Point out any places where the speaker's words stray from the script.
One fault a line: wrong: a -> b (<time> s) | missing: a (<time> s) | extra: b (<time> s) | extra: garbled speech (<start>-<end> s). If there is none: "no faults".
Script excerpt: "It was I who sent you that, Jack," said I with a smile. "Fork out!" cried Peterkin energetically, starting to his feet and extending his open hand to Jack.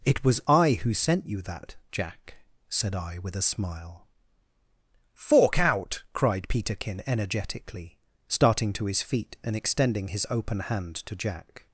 no faults